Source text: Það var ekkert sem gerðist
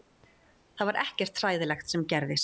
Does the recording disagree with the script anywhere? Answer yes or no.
yes